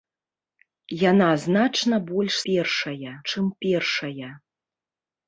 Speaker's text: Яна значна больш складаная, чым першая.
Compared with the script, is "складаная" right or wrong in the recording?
wrong